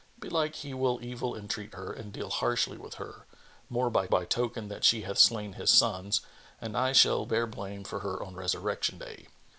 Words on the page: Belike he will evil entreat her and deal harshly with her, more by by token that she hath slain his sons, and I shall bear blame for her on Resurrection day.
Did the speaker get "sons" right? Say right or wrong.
right